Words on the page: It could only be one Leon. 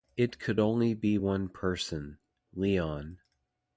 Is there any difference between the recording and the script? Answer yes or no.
yes